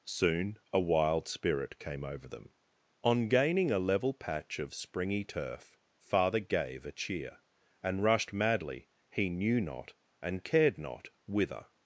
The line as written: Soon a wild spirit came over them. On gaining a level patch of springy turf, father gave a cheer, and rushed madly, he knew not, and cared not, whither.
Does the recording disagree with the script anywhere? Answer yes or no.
no